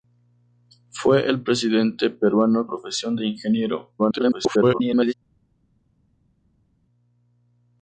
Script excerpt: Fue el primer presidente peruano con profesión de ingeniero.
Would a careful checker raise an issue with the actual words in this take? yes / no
yes